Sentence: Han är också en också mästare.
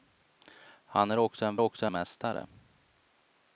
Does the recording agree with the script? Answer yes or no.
yes